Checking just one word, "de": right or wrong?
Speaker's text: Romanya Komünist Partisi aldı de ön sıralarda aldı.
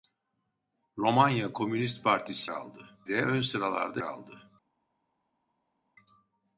right